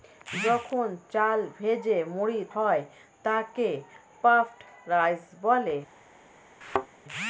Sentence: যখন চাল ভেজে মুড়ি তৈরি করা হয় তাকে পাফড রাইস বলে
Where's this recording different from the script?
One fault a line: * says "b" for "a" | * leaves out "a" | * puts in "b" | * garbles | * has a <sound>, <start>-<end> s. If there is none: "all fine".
* leaves out "তৈরি করা"
* has a thud, 6.6-6.9 s